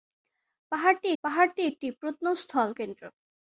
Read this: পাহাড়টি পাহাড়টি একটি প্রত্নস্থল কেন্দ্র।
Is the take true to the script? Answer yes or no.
yes